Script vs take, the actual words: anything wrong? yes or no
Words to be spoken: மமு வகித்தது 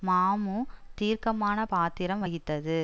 yes